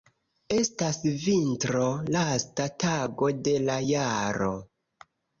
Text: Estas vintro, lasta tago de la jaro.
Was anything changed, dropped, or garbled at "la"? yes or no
no